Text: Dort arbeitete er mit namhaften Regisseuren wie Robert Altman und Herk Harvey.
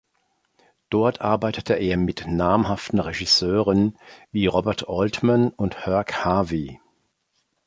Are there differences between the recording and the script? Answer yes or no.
no